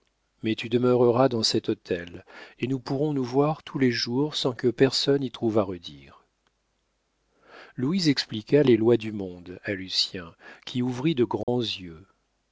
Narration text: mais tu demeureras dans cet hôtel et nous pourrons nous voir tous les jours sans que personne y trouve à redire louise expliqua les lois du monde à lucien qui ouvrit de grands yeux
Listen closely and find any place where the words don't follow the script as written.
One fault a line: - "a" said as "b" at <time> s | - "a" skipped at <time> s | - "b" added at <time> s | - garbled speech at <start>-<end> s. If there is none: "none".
none